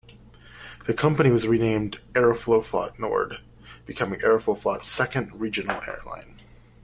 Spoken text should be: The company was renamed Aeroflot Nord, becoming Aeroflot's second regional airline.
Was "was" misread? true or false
false